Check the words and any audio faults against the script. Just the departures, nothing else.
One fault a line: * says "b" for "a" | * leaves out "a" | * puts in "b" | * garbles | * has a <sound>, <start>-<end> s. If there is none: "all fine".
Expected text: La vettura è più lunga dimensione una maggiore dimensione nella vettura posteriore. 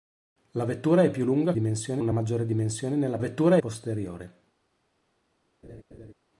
* has a laugh, 5.6-6.1 s